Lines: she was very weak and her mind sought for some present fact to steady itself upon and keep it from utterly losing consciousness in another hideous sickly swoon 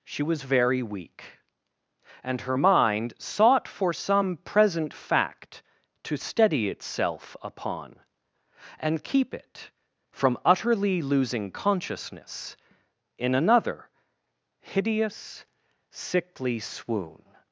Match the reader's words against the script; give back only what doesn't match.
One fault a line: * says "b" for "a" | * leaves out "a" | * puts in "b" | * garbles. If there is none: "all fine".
all fine